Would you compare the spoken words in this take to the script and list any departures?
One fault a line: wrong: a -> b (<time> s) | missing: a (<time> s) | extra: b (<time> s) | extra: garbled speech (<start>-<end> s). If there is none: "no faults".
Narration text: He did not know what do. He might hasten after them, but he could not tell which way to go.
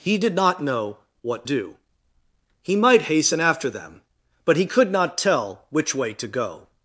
no faults